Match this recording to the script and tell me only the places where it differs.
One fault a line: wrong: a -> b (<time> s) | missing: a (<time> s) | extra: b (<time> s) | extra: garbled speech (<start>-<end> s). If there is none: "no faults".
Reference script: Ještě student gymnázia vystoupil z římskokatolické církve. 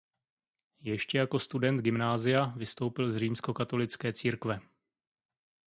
extra: jako (1.2 s)